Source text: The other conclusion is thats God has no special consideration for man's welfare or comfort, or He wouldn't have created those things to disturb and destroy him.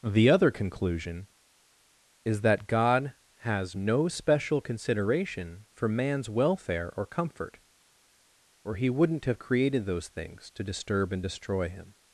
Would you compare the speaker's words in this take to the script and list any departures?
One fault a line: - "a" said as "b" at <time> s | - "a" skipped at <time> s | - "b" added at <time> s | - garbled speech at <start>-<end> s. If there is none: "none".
- "thats" said as "that" at 2.4 s